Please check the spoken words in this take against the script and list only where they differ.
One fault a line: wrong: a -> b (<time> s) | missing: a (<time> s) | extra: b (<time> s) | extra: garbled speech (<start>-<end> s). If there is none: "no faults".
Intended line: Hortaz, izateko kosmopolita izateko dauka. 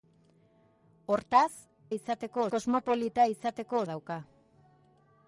no faults